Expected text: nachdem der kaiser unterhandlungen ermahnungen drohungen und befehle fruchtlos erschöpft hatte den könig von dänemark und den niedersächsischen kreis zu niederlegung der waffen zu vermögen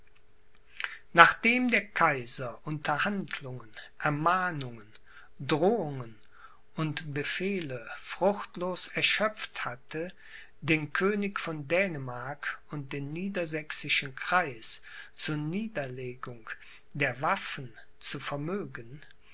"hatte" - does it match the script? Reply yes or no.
yes